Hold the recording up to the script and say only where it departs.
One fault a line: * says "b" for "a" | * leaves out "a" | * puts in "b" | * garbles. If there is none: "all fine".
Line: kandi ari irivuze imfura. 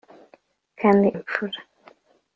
* leaves out "ari irivuze"